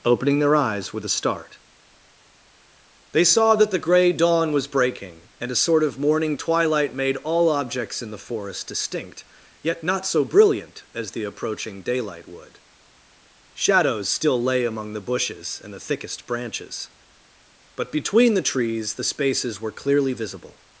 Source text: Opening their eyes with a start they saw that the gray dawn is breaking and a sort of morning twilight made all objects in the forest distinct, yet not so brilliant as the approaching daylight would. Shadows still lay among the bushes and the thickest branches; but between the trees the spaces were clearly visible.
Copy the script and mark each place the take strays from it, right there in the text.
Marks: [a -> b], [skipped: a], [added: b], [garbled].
Opening their eyes with a start they saw that the gray dawn [is -> was] breaking and a sort of morning twilight made all objects in the forest distinct, yet not so brilliant as the approaching daylight would. Shadows still lay among the bushes and the thickest branches; but between the trees the spaces were clearly visible.